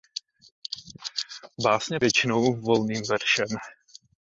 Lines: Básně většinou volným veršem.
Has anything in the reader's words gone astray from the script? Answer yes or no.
no